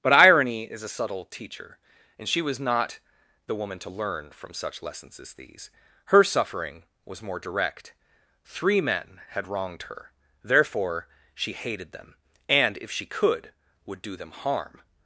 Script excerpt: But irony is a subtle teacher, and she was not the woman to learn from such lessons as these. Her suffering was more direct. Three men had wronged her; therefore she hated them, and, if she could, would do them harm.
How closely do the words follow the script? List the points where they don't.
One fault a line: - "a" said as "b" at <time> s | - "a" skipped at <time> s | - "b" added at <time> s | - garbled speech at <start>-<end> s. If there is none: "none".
none